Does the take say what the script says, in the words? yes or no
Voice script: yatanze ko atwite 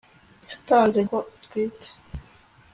yes